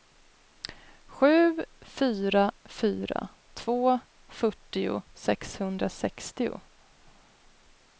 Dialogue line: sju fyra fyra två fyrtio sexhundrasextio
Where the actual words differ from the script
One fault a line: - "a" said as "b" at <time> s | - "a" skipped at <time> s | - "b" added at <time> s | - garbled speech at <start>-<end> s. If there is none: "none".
none